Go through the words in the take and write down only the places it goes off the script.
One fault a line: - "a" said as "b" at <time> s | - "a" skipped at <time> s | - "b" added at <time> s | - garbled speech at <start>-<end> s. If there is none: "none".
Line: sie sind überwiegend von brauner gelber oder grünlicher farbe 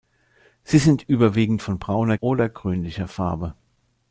- "gelber" skipped at 2.2 s